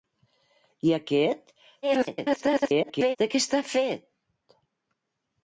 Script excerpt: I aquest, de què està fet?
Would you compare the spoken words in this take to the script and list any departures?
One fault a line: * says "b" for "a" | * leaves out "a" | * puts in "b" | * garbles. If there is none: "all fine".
* garbles